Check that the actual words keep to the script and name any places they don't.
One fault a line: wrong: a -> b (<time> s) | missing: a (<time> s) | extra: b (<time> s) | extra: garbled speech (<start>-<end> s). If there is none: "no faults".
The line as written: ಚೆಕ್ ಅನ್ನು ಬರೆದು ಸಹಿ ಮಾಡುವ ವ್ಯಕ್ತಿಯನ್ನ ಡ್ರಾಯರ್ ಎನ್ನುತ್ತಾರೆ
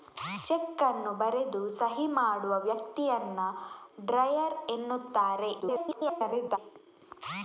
extra: garbled speech (5.6-6.6 s)